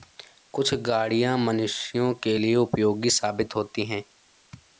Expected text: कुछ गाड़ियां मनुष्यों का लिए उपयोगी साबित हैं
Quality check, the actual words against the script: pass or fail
fail